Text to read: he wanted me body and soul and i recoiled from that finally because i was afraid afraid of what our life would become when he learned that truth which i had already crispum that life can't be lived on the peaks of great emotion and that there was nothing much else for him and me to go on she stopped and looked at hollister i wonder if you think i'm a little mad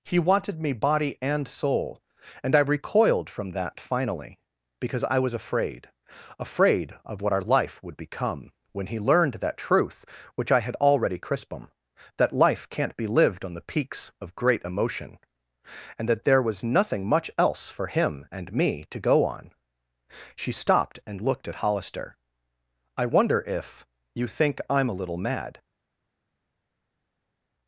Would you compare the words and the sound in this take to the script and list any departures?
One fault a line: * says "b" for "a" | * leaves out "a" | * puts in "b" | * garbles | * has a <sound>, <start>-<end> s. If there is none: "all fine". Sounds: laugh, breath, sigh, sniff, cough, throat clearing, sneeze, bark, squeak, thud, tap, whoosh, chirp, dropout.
all fine